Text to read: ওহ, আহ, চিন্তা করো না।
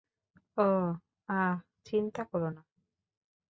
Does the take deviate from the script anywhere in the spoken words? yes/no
no